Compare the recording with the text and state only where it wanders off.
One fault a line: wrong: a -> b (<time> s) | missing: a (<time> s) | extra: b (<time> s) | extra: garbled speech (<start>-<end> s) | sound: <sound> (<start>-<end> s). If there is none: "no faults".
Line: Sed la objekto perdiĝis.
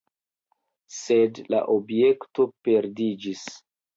no faults